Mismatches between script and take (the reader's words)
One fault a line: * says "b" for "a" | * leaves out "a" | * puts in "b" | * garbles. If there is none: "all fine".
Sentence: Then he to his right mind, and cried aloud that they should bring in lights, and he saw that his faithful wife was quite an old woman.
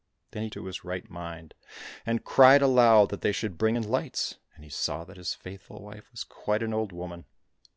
all fine